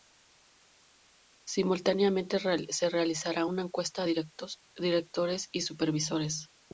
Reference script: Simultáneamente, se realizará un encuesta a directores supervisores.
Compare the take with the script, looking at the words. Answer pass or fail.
fail